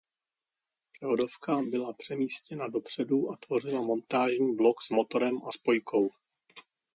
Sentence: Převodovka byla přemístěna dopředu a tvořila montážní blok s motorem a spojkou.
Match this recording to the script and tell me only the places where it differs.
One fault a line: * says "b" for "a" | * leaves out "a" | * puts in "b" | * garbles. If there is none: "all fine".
all fine